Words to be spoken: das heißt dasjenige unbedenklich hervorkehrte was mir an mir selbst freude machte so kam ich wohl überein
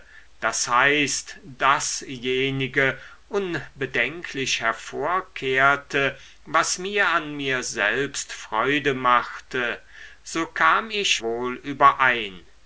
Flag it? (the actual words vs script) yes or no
no